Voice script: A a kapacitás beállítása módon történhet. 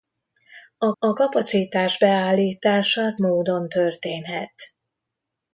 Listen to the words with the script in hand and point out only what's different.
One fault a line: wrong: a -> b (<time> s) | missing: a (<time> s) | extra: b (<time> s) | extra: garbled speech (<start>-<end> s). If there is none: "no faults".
no faults